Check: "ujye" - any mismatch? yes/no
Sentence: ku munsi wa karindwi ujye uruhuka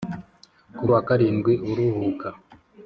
yes